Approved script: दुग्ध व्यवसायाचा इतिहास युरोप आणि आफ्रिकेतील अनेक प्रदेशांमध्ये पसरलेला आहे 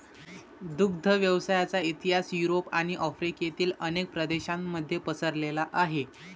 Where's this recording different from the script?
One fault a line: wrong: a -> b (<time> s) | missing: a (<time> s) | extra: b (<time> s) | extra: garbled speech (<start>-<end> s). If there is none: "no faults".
no faults